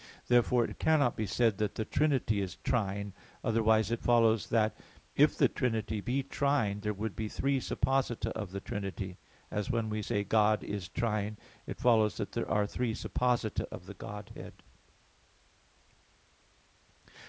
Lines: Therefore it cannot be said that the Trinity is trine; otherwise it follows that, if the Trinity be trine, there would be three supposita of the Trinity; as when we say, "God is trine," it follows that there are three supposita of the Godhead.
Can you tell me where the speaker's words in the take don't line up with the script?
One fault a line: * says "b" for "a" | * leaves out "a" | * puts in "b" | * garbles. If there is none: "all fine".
all fine